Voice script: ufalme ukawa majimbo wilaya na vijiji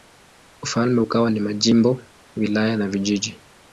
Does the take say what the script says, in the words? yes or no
no